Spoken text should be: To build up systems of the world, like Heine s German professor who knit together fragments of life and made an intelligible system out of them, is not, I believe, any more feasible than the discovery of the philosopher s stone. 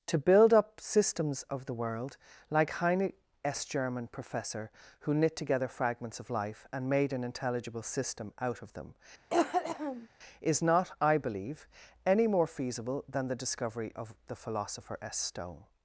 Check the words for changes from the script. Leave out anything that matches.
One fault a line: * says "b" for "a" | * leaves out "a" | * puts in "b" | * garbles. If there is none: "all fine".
all fine